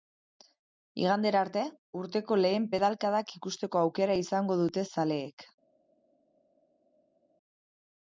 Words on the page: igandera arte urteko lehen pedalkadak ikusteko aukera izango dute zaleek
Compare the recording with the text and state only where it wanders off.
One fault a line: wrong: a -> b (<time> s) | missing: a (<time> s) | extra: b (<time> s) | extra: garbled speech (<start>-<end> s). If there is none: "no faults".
no faults